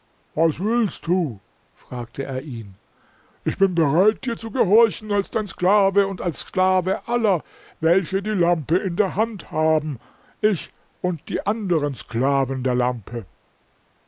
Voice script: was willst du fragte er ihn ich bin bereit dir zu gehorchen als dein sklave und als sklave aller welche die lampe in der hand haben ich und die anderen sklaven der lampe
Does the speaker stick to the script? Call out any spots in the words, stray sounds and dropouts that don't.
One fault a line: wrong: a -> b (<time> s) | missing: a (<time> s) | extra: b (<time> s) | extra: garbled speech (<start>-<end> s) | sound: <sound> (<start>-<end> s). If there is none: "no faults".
no faults